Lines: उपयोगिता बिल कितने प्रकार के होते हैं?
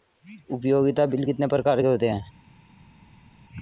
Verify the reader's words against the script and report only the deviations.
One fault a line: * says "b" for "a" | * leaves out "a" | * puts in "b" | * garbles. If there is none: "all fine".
all fine